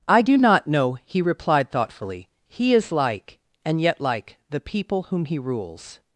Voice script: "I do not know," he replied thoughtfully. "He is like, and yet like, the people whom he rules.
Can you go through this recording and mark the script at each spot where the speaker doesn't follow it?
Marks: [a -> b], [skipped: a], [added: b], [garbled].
"I do not know," he replied thoughtfully. "He is like, and yet like, the people whom he rules.